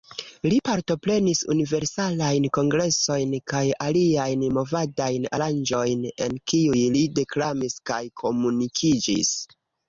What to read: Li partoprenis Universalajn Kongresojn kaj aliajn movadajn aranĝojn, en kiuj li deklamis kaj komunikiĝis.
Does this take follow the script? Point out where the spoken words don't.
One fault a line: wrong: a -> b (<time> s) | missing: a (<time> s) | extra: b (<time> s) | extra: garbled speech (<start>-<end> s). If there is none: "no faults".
no faults